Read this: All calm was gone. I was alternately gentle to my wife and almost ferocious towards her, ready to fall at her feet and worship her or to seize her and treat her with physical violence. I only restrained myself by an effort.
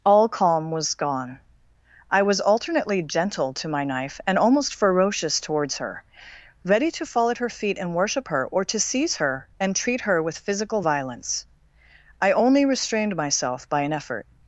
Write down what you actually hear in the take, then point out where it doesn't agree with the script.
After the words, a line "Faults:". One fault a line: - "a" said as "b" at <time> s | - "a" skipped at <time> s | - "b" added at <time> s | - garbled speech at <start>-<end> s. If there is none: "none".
All calm was gone. I was alternately gentle to my knife and almost ferocious towards her, ready to fall at her feet and worship her or to seize her and treat her with physical violence. I only restrained myself by an effort.
Faults:
- "wife" said as "knife" at 3.8 s